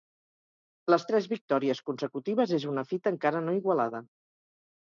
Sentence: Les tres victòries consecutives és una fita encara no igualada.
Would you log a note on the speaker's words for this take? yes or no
no